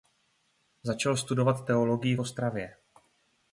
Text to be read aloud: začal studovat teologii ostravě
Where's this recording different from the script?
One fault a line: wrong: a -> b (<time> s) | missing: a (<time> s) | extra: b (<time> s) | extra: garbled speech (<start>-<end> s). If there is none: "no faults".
no faults